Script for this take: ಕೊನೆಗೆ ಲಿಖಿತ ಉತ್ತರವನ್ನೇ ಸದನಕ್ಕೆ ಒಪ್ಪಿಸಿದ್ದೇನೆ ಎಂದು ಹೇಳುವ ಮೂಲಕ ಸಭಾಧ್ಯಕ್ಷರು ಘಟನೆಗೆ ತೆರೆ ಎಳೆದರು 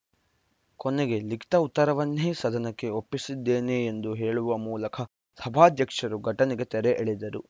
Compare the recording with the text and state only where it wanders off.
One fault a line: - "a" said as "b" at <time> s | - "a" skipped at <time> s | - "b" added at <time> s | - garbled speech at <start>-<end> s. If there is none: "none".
none